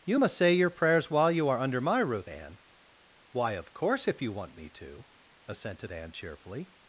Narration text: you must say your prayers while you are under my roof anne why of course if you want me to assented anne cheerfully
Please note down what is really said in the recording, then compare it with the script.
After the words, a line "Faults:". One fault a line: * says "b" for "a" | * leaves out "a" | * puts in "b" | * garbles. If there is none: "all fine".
you must say your prayers while you are under my roof anne why of course if you want me to assented anne cheerfully
Faults:
all fine